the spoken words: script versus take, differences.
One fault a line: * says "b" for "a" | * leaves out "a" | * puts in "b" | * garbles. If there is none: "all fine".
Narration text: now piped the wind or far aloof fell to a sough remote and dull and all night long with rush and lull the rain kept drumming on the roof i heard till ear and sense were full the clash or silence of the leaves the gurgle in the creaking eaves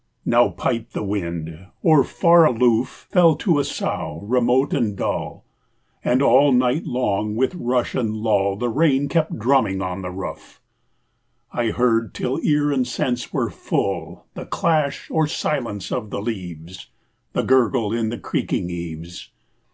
all fine